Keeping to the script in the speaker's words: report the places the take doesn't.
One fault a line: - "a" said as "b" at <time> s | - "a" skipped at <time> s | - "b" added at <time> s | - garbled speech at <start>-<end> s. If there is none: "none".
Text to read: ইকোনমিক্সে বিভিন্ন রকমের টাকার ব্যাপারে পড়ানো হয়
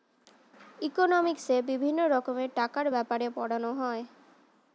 none